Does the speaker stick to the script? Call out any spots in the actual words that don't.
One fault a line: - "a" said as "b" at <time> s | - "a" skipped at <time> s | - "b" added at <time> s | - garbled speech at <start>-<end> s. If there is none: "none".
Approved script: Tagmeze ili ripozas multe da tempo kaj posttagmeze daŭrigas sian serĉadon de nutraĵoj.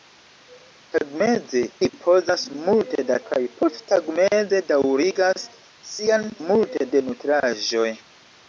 - "ili" skipped at 1.6 s
- "tempo" skipped at 3.2 s
- "serĉadon" said as "multe" at 6.5 s